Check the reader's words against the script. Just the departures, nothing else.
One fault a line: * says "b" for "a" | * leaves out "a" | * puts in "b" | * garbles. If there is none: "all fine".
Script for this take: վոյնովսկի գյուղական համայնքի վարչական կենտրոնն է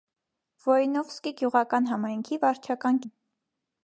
* leaves out "կենտրոնն"